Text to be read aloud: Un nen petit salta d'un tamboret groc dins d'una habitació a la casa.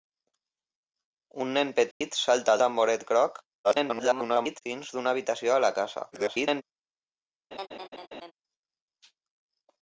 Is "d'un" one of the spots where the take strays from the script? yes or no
yes